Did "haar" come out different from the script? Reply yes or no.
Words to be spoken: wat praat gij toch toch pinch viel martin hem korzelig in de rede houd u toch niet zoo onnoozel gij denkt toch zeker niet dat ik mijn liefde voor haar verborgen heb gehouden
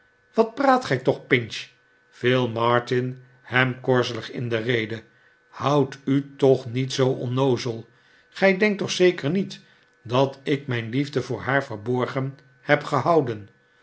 no